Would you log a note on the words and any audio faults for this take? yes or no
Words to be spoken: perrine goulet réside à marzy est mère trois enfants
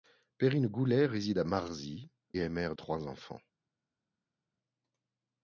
no